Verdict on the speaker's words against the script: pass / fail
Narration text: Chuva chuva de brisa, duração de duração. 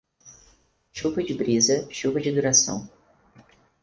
fail